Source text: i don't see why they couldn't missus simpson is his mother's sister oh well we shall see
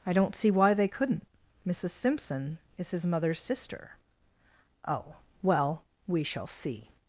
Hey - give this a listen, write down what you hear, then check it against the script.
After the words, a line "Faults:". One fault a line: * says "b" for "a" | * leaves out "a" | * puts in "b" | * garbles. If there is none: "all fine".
i don't see why they couldn't missus simpson is his mother's sister oh well we shall see
Faults:
all fine